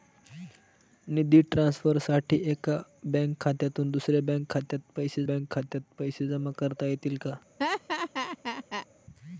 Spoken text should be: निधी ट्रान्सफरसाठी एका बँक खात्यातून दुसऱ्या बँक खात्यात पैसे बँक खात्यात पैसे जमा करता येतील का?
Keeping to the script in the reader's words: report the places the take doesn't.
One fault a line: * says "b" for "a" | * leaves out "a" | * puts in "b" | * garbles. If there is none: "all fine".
all fine